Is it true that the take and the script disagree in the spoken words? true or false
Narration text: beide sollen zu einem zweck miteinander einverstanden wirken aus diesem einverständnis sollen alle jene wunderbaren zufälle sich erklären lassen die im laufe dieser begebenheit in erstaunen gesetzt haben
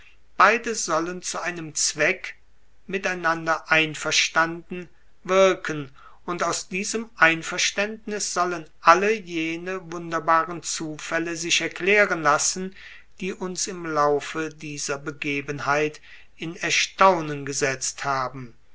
true